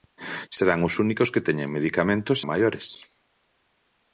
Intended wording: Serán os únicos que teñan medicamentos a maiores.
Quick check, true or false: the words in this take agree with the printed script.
true